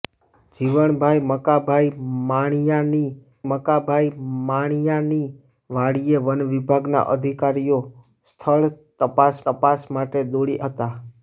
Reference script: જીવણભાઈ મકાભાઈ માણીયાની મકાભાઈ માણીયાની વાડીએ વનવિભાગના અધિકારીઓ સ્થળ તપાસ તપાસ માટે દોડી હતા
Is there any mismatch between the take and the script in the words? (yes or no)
no